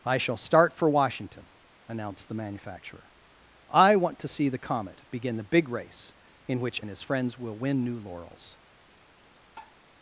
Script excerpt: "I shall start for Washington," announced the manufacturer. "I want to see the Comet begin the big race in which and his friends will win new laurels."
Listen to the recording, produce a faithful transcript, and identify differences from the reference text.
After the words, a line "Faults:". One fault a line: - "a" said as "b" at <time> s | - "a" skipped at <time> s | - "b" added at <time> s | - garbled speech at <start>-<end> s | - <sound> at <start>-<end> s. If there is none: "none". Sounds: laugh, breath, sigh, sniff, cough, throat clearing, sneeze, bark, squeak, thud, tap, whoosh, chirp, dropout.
"I shall start for Washington," announced the manufacturer. "I want to see the Comet begin the big race in which and his friends will win new laurels."
Faults:
- tap at 9.6-9.8 s